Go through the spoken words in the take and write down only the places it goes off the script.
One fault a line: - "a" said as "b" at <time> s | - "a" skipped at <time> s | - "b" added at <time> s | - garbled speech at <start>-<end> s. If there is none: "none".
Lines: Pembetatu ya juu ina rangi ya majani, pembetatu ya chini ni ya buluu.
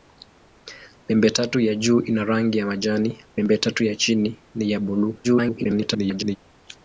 - garbled speech at 5.2-6.4 s